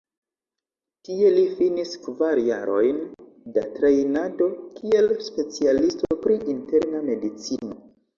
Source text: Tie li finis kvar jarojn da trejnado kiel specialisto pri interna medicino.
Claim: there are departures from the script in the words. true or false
false